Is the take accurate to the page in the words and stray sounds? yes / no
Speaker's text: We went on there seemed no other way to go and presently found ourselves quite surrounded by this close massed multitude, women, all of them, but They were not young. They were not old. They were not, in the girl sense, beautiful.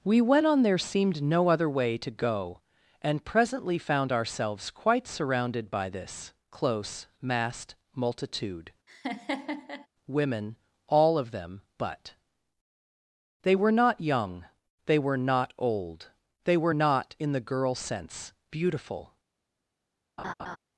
no